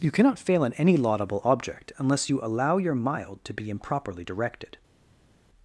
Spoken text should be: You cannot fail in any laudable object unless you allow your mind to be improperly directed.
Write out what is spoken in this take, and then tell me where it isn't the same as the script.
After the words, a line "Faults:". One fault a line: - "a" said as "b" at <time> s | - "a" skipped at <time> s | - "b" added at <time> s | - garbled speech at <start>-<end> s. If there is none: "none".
You cannot fail in any laudable object unless you allow your mild to be improperly directed.
Faults:
- "mind" said as "mild" at 2.9 s